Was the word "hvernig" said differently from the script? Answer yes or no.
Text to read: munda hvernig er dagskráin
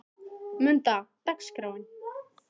yes